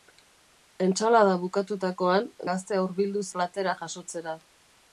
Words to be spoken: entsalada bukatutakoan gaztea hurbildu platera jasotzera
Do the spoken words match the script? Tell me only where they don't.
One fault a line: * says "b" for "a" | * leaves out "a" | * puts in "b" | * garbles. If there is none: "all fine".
all fine